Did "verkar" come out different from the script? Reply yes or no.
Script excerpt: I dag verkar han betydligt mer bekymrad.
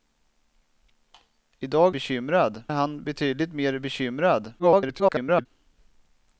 yes